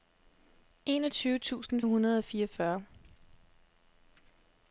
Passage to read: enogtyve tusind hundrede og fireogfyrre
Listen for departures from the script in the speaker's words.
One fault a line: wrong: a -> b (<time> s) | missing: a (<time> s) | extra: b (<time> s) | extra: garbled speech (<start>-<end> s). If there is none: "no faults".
no faults